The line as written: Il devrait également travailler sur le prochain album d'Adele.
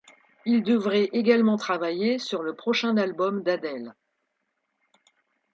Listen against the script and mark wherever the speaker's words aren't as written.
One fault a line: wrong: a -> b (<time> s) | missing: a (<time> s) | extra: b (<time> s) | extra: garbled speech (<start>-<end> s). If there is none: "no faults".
no faults